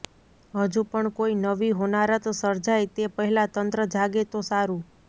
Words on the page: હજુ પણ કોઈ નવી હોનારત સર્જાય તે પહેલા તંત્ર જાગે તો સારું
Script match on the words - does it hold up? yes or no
yes